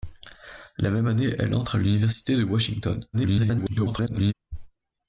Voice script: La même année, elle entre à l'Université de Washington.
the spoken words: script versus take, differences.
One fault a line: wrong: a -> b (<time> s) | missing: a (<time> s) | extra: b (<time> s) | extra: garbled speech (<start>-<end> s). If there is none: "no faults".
extra: garbled speech (3.1-4.3 s)